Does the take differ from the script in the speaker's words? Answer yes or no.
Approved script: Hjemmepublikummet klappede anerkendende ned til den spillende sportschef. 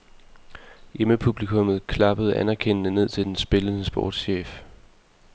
no